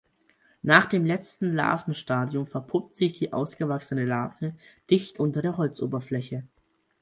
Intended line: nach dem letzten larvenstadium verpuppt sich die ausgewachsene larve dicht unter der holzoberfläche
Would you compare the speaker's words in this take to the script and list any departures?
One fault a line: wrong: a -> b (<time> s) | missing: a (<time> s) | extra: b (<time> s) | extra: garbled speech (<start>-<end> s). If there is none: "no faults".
no faults